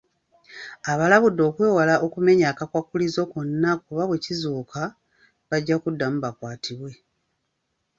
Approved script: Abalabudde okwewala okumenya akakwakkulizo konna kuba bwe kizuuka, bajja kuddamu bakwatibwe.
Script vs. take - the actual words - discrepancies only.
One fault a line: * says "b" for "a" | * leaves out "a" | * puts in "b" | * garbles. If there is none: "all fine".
all fine